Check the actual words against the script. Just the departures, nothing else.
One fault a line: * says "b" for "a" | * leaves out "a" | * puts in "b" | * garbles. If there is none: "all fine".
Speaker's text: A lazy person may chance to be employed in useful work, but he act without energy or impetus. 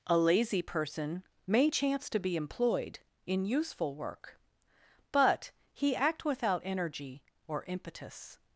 all fine